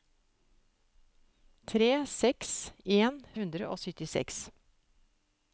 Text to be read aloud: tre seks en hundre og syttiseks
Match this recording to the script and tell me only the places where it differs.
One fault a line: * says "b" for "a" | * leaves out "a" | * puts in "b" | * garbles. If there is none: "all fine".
all fine